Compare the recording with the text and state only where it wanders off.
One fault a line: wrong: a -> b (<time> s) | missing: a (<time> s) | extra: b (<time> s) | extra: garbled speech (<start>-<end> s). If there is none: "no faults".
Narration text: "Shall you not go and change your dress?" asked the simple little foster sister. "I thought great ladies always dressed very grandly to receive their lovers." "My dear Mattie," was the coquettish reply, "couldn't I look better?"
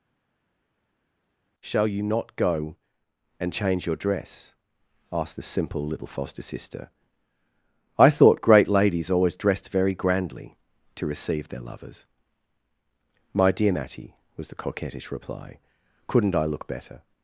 no faults